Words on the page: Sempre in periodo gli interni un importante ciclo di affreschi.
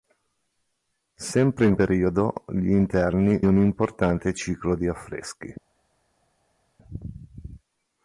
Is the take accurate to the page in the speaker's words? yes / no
yes